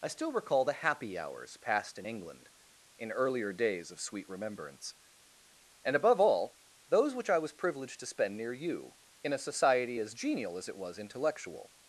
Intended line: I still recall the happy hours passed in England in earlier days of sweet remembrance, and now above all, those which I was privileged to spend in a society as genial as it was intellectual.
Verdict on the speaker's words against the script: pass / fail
fail